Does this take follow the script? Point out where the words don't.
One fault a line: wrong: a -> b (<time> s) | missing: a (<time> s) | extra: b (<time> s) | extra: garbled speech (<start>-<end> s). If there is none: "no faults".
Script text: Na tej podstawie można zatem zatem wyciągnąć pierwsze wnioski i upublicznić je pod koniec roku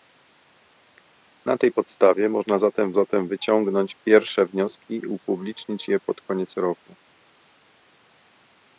no faults